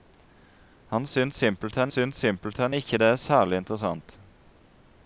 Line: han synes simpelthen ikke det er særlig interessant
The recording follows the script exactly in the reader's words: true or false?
false